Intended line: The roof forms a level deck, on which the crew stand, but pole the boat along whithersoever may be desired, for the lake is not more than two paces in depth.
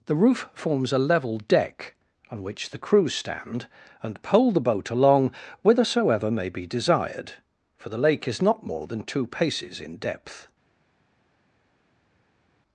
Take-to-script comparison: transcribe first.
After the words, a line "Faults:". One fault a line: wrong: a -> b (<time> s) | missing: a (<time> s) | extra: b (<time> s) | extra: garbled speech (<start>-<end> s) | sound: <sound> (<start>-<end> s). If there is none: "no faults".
The roof forms a level deck, on which the crew stand, and pole the boat along whithersoever may be desired, for the lake is not more than two paces in depth.
Faults:
wrong: but -> and (4.0 s)